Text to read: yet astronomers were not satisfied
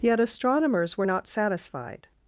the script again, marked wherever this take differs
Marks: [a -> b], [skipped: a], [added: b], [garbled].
yet astronomers were not satisfied